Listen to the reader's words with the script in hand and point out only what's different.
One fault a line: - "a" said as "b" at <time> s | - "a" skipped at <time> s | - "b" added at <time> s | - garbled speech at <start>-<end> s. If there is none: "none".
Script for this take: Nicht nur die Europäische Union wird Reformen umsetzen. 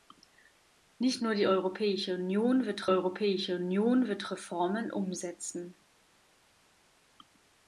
- "Europäische Union wird" added at 2.8 s